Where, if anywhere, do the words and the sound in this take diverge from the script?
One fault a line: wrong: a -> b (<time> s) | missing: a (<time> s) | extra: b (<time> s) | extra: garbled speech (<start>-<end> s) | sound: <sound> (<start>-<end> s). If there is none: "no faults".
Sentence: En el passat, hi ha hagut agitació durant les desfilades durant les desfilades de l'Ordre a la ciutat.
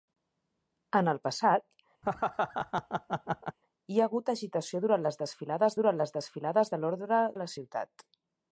sound: laugh (2.0-3.6 s)